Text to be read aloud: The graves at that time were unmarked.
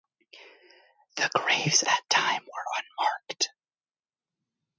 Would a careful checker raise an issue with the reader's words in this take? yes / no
yes